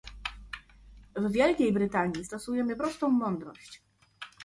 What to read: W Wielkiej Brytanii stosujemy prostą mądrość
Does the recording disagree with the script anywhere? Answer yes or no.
no